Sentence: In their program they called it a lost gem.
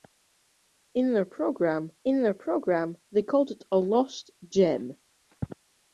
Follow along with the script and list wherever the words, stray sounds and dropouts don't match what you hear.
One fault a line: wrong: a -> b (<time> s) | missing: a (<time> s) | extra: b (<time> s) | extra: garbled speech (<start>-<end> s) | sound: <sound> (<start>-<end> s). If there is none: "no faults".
extra: in their program (2.1 s)